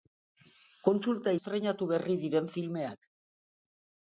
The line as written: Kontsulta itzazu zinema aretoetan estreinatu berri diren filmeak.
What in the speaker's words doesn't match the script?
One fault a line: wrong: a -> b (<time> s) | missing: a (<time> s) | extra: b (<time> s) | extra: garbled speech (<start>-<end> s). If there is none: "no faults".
missing: itzazu zinema aretoetan (1.3 s)